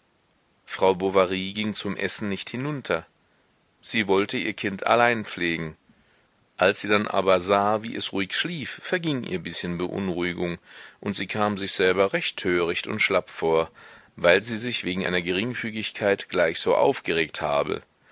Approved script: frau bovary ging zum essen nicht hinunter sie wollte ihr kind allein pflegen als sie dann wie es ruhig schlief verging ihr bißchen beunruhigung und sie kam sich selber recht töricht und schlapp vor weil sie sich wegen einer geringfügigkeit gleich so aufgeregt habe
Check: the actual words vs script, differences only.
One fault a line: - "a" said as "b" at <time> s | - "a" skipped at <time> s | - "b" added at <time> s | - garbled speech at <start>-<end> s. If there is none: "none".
- "aber sah" added at 7.1 s